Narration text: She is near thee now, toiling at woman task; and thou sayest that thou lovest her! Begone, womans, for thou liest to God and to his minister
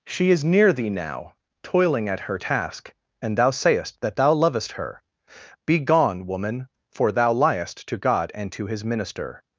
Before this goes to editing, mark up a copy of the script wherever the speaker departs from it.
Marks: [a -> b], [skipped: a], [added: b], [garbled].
She is near thee now, toiling at [woman -> her] task; and thou sayest that thou lovest her! Begone, [womans, -> woman] for thou liest to God and to his minister